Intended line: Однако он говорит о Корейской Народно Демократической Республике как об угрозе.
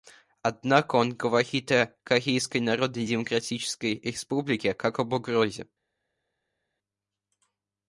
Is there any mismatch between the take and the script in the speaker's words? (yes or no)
no